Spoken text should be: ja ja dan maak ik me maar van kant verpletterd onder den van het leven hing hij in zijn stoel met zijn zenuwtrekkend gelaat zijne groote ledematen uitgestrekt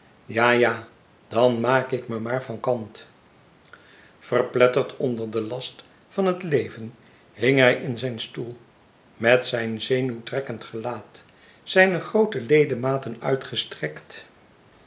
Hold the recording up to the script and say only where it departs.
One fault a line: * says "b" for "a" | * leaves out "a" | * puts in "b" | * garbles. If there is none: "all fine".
* puts in "last"